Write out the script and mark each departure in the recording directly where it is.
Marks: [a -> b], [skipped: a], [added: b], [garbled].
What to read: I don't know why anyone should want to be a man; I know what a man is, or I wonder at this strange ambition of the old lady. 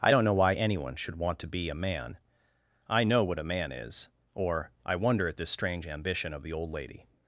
I don't know why anyone should want to be a man; I know what a man is, or I wonder at this strange ambition of the old lady.